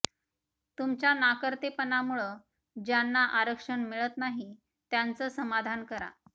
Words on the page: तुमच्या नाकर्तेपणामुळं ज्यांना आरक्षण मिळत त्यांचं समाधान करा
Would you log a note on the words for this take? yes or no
yes